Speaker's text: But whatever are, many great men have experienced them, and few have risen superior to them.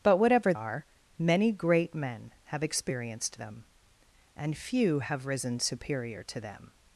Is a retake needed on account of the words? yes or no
no